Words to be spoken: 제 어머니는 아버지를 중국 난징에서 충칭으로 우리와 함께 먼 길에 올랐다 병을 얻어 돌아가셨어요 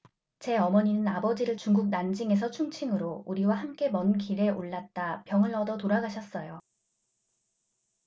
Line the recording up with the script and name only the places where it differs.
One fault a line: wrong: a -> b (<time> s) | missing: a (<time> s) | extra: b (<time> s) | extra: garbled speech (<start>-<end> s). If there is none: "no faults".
no faults